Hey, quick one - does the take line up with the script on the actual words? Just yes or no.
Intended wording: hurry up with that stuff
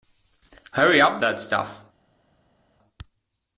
no